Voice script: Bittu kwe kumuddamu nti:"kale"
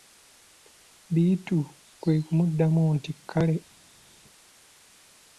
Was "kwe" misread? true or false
false